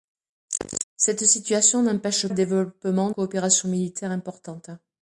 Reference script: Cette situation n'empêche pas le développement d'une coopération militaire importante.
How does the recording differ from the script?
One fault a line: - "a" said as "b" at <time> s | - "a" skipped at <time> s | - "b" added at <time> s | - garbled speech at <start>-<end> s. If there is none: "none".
- "pas" skipped at 2.3 s
- "d'une" skipped at 3.1 s